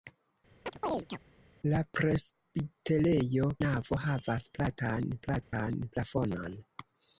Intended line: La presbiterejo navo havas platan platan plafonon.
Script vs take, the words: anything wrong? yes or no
no